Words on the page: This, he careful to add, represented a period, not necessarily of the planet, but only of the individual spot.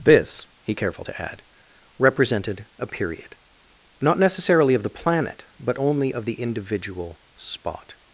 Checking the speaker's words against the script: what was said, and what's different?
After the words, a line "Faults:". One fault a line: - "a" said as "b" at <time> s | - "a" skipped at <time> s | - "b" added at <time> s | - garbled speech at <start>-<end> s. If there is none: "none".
This, he careful to add, represented a period, not necessarily of the planet, but only of the individual spot.
Faults:
none